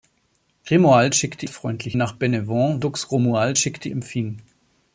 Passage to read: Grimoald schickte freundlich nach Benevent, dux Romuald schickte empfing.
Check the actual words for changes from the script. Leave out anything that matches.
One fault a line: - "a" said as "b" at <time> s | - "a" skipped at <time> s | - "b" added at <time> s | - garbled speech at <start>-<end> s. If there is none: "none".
none